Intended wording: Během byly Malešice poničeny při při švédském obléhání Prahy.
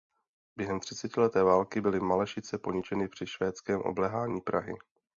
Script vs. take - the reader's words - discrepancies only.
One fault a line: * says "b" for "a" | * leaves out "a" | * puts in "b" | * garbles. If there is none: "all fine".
* puts in "třicetileté války"
* leaves out "při"